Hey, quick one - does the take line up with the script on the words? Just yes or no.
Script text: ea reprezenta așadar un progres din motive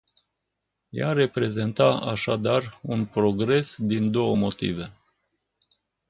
no